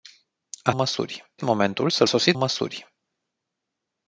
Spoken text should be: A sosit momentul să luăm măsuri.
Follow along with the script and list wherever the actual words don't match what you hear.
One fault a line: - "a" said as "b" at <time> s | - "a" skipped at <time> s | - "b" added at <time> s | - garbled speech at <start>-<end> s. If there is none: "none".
- "sosit" said as "măsuri" at 0.7 s
- "luăm" said as "sosit" at 2.0 s